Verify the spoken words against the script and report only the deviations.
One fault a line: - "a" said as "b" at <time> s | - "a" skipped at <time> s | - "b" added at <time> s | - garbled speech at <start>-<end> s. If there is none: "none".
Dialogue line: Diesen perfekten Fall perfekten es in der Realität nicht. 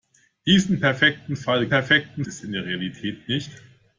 none